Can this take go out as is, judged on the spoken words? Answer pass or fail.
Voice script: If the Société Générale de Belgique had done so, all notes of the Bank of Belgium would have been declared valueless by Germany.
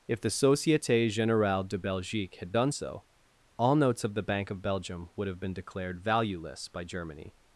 pass